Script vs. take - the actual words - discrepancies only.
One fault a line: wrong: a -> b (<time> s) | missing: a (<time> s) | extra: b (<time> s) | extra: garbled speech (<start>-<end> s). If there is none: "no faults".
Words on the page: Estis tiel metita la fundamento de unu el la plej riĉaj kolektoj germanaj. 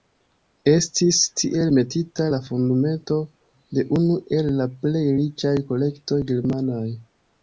no faults